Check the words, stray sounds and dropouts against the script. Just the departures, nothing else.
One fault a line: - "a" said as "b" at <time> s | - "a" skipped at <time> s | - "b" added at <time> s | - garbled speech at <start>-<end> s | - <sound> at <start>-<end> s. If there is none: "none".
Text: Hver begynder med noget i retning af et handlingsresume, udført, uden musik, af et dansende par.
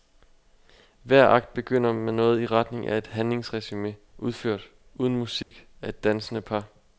- "akt" added at 1.3 s
- dropout at 5.4-5.5 s